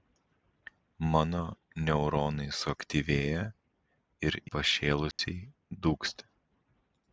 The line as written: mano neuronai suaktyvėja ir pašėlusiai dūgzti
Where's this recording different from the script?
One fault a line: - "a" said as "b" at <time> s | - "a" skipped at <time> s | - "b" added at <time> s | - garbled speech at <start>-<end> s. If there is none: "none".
none